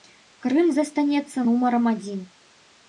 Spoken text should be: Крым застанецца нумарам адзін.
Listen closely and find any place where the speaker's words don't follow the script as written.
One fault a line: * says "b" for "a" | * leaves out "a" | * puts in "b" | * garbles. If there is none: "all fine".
all fine